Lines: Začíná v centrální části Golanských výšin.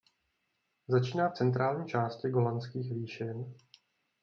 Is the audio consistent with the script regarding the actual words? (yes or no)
yes